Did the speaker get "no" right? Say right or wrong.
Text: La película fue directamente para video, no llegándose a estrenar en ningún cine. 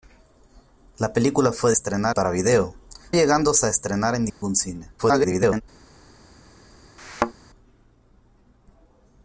wrong